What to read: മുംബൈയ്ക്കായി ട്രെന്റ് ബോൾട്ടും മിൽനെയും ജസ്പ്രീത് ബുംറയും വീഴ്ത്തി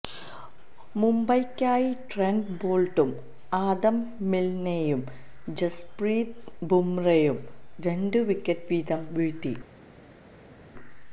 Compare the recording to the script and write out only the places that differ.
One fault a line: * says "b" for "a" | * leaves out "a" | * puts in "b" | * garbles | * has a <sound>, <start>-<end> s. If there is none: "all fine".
* puts in "ആദം"
* puts in "രണ്ട് വിക്കറ്റ് വീതം"